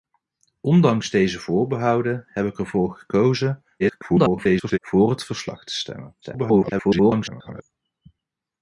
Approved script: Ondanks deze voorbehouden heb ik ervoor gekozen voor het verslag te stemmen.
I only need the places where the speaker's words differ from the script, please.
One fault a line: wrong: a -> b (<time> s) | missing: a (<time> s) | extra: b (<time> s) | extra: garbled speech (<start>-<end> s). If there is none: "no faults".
extra: garbled speech (3.8-4.8 s)
extra: garbled speech (6.2-7.6 s)